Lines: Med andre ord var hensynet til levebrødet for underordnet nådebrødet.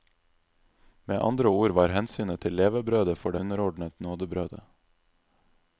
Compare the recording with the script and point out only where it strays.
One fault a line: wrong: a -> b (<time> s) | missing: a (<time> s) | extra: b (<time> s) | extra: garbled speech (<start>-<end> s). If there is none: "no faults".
no faults